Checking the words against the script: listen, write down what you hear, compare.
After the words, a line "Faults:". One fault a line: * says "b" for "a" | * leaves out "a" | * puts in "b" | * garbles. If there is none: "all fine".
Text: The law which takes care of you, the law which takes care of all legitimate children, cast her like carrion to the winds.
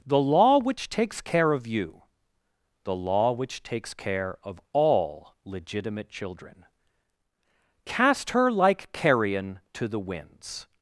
The law which takes care of you, the law which takes care of all legitimate children, cast her like carrion to the winds.
Faults:
all fine